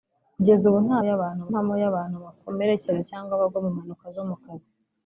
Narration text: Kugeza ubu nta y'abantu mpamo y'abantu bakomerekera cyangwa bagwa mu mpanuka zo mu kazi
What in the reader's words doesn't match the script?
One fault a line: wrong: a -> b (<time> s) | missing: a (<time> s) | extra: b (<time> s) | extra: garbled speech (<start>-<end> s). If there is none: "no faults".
no faults